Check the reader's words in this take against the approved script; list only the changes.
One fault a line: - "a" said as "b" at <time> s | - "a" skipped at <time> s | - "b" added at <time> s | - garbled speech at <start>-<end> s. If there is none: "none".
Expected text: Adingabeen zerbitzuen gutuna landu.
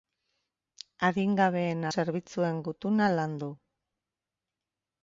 none